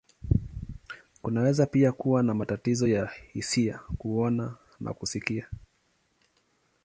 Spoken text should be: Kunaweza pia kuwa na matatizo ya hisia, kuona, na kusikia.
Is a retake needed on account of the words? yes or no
no